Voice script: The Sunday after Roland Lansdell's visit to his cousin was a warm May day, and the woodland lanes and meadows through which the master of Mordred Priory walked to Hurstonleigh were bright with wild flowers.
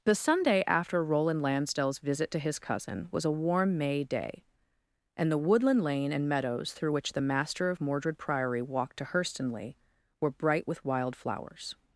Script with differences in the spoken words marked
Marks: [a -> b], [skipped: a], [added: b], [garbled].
The Sunday after Roland Lansdell's visit to his cousin was a warm May day, and the woodland [lanes -> lane] and meadows through which the master of Mordred Priory walked to Hurstonleigh were bright with wild flowers.